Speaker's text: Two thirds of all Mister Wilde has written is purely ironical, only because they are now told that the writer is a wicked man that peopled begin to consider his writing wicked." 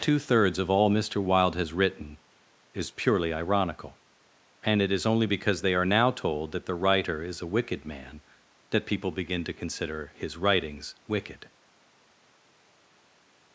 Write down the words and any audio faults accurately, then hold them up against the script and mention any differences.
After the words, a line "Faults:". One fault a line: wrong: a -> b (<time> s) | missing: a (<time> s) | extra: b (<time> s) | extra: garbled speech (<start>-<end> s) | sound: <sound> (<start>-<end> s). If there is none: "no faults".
Two thirds of all Mister Wilde has written is purely ironical, and it is only because they are now told that the writer is a wicked man that people begin to consider his writings wicked."
Faults:
extra: and it is (4.6 s)
wrong: peopled -> people (8.9 s)
wrong: writing -> writings (10.4 s)